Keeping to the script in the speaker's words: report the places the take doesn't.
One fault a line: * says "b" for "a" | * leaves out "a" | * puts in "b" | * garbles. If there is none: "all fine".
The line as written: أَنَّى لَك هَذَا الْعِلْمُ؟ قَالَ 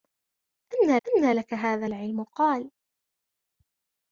* puts in "أَنَّى"